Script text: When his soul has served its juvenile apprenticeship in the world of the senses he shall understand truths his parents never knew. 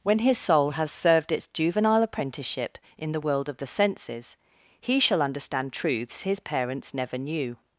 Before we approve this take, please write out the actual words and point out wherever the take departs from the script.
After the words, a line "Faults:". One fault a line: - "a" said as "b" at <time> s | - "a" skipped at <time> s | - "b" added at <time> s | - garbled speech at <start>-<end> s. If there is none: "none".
When his soul has served its juvenile apprenticeship in the world of the senses he shall understand truths his parents never knew.
Faults:
none